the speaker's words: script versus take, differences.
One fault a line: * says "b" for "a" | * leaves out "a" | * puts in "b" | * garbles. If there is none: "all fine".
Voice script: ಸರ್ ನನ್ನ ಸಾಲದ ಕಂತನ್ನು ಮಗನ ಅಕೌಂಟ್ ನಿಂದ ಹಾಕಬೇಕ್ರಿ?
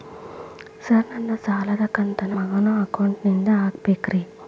all fine